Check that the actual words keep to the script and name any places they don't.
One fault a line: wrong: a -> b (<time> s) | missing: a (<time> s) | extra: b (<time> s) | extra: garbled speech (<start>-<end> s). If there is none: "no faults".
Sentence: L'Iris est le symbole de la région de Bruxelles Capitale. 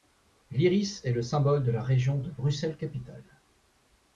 no faults